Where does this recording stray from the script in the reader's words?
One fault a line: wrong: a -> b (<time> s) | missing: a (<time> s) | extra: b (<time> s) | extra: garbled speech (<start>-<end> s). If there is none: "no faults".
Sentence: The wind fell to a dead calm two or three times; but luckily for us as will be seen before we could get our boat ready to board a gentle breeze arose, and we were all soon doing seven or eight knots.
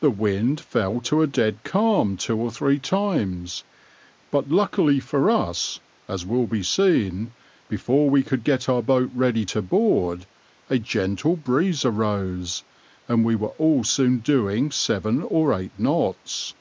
no faults